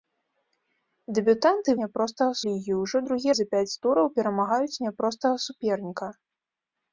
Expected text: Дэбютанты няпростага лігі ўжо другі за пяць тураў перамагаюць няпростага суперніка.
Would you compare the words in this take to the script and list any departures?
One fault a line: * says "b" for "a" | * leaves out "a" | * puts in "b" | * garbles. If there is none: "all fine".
all fine